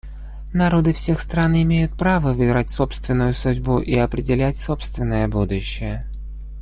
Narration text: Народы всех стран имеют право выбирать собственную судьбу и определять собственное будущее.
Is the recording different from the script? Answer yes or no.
no